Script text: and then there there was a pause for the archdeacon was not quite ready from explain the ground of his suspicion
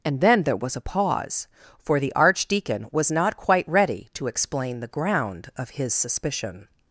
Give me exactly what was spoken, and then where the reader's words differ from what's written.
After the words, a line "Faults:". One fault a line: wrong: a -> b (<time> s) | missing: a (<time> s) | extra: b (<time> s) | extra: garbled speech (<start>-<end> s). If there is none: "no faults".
and then there was a pause for the archdeacon was not quite ready to explain the ground of his suspicion
Faults:
missing: there (0.6 s)
wrong: from -> to (4.1 s)